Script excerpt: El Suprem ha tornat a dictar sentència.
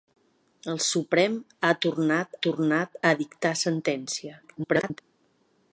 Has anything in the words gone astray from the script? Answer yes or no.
yes